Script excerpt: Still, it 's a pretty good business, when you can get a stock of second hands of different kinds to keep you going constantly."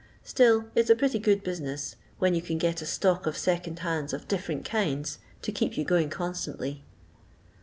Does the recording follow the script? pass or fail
pass